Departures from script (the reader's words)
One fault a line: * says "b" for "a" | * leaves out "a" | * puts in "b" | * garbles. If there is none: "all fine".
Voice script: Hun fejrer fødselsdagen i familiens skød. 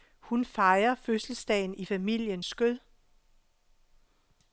all fine